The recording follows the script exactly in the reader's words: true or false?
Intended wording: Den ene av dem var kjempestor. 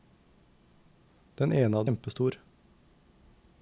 false